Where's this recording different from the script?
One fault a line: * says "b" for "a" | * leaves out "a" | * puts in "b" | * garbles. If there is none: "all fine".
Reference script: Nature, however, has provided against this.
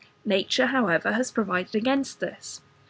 all fine